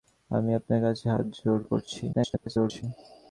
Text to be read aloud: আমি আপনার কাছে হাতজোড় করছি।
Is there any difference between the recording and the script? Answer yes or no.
yes